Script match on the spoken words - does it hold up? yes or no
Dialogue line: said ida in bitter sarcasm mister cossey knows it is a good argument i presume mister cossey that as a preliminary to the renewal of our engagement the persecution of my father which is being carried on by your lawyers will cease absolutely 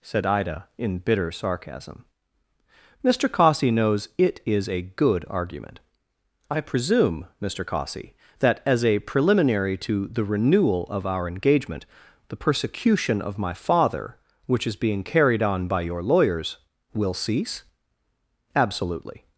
yes